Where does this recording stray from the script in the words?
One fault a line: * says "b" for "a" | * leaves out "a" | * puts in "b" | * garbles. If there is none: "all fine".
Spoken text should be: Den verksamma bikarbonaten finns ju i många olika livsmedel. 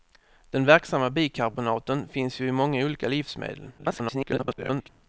* garbles